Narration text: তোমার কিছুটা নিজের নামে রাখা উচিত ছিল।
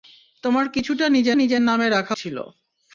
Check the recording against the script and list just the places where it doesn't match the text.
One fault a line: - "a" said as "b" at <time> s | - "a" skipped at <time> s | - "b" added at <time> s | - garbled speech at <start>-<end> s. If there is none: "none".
- "নিজের" added at 1.3 s
- "উচিত" skipped at 2.1 s